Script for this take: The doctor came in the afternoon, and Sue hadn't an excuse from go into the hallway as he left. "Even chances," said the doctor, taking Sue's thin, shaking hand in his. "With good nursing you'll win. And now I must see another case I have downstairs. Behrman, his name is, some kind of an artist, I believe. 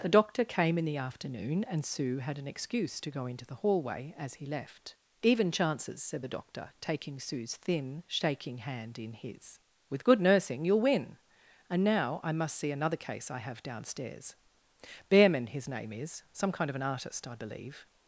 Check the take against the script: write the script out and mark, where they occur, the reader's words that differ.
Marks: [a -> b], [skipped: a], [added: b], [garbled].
The doctor came in the afternoon, and Sue [hadn't -> had] an excuse [from -> to] go into the hallway as he left. "Even chances," said the doctor, taking Sue's thin, shaking hand in his. "With good nursing you'll win. And now I must see another case I have downstairs. Behrman, his name is, some kind of an artist, I believe.